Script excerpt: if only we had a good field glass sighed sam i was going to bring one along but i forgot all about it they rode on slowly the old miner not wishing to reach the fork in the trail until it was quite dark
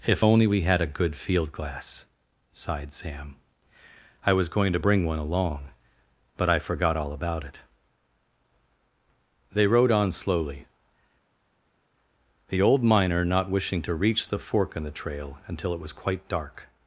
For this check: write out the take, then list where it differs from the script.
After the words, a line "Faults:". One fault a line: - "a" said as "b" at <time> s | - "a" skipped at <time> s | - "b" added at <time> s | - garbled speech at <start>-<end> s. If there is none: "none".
if only we had a good field glass sighed sam i was going to bring one along but i forgot all about it they rode on slowly the old miner not wishing to reach the fork in the trail until it was quite dark
Faults:
none